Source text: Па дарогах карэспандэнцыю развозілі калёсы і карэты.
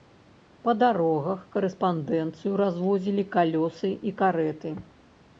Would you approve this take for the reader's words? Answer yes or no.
yes